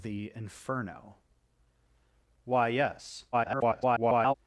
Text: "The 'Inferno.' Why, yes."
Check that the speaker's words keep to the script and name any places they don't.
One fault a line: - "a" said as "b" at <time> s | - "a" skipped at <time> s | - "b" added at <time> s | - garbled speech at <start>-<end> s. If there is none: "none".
- garbled speech at 3.3-4.3 s